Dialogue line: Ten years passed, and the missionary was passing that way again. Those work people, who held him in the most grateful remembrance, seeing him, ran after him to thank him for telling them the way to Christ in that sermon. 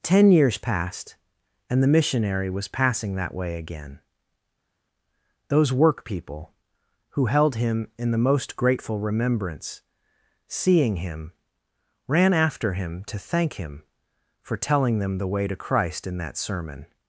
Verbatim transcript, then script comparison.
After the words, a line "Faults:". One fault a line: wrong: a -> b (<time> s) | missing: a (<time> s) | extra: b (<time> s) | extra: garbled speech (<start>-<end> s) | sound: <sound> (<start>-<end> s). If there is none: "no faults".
Ten years passed, and the missionary was passing that way again. Those work people, who held him in the most grateful remembrance, seeing him, ran after him to thank him for telling them the way to Christ in that sermon.
Faults:
no faults